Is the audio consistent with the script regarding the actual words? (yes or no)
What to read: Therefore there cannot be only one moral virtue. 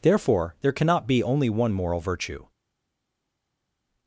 yes